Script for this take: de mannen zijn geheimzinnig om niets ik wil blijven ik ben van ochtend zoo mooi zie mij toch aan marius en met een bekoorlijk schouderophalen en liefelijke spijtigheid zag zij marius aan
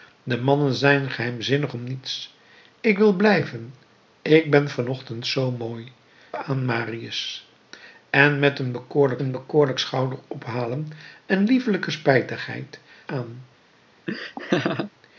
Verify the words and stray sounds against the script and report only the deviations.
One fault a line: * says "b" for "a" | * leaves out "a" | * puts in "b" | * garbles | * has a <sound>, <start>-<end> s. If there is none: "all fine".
* leaves out "zie mij toch"
* puts in "een bekoorlijk"
* leaves out "zag zij marius"
* has a laugh, 14.1-14.9 s